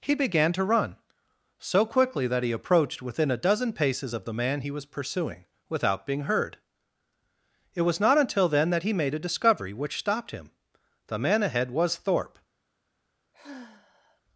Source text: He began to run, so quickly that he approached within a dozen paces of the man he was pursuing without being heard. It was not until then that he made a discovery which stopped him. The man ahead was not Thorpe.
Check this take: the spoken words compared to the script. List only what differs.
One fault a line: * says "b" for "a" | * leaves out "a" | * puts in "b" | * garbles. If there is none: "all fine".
* leaves out "not"